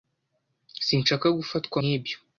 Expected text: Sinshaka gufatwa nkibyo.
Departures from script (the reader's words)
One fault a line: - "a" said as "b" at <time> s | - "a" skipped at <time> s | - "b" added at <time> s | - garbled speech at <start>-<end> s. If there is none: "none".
none